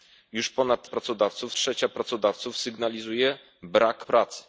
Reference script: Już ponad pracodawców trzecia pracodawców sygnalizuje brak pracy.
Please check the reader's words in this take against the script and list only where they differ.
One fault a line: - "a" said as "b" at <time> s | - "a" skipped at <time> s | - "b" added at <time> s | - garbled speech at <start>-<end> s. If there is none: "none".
none